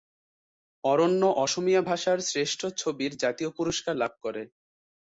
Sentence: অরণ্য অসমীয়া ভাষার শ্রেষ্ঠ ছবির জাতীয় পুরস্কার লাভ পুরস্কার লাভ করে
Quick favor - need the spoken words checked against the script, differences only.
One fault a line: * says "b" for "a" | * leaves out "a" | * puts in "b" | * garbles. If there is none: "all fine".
* leaves out "পুরস্কার লাভ"